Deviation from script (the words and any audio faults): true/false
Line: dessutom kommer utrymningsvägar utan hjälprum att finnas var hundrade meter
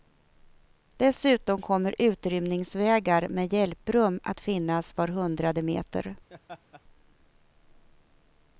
true